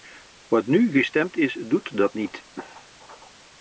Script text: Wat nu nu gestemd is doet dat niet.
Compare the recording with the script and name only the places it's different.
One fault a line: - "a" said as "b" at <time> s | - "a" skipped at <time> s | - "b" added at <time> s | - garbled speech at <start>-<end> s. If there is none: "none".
- "nu" skipped at 0.9 s